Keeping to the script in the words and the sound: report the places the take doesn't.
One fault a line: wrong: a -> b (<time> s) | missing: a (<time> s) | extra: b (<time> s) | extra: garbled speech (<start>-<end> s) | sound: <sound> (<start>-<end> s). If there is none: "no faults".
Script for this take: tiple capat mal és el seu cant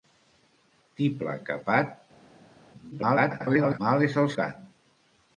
extra: garbled speech (2.9-3.8 s)
missing: seu (4.3 s)